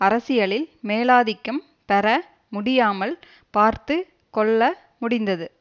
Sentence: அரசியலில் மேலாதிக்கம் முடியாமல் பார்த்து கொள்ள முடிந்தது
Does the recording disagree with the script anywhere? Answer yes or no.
yes